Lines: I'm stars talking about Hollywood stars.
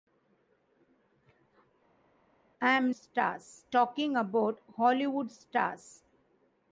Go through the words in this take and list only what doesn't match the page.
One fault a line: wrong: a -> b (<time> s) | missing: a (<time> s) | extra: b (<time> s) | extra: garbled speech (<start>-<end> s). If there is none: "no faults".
no faults